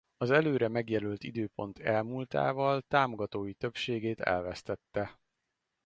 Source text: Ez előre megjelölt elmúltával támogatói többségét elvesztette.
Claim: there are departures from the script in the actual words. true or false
true